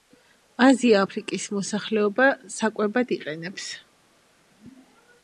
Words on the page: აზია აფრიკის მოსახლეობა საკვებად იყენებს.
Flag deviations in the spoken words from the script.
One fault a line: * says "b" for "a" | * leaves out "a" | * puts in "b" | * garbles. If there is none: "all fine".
all fine